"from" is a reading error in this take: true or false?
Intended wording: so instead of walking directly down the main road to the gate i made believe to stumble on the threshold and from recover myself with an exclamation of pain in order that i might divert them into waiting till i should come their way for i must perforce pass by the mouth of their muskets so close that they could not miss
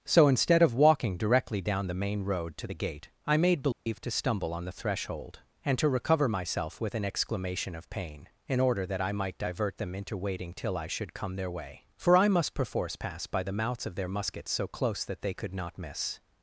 true